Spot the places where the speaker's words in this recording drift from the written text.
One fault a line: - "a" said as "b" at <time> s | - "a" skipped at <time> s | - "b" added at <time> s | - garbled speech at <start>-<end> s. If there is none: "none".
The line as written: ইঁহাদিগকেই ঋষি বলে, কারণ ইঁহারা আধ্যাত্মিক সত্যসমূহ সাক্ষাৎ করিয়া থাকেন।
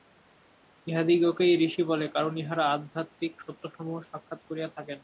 none